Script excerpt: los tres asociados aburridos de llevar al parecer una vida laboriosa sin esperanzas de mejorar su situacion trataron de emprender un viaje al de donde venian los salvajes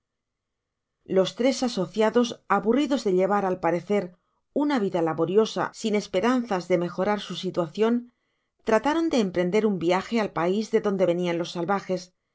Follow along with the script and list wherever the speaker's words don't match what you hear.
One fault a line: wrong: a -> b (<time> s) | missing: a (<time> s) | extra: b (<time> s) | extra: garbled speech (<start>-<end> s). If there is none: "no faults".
extra: pais (10.3 s)